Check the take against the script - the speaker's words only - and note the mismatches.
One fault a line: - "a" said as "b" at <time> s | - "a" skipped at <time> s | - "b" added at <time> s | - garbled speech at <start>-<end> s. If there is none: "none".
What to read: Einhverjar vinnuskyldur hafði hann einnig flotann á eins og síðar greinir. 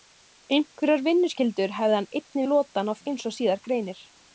none